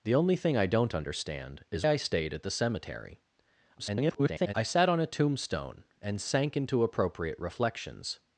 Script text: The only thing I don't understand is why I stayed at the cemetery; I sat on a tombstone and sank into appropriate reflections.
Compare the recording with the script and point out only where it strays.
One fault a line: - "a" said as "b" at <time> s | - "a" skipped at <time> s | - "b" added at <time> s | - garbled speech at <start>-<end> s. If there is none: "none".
- "why" skipped at 1.9 s
- garbled speech at 3.8-4.5 s